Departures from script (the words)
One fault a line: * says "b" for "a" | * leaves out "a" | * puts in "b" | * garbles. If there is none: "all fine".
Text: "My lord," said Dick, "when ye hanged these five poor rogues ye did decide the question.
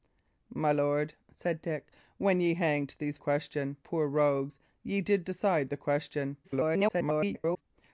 * says "question" for "five"
* garbles